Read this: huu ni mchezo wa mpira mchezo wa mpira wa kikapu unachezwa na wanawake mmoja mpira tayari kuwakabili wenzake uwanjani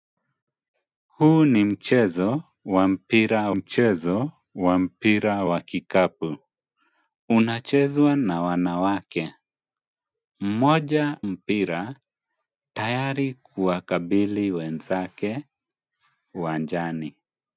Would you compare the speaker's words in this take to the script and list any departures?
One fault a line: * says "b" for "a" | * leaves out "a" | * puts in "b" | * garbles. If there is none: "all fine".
all fine